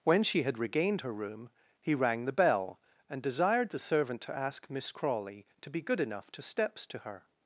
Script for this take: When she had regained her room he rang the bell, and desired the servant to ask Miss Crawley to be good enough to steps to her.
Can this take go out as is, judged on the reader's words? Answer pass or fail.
pass